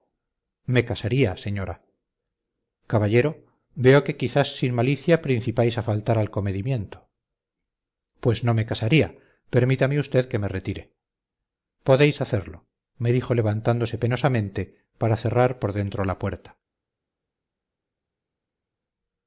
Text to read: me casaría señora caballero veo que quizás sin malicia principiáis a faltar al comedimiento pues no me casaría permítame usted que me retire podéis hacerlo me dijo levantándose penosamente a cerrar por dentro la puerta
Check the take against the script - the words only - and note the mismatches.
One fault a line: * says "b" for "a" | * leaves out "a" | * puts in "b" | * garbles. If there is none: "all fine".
* says "para" for "a"